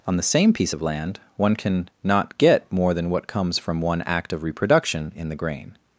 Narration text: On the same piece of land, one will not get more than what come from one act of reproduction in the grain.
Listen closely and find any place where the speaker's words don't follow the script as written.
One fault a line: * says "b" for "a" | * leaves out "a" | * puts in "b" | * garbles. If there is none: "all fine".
* says "can" for "will"
* says "comes" for "come"